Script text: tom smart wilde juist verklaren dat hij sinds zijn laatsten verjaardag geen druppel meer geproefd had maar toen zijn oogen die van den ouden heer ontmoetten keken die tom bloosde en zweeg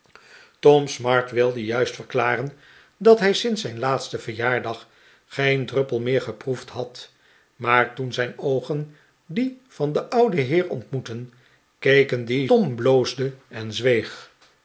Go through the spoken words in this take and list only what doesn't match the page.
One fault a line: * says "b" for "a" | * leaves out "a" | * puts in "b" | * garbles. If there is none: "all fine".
all fine